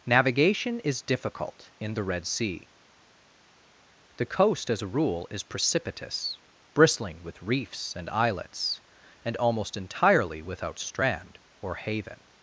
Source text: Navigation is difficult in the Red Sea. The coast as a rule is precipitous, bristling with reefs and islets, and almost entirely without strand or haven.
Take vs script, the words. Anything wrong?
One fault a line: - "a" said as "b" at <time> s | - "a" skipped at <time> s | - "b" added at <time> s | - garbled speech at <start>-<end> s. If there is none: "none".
none